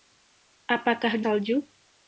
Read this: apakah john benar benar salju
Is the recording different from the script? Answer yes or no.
yes